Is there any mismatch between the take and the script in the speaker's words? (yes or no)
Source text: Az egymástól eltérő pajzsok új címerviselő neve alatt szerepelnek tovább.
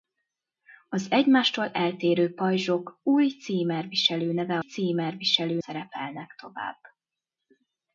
yes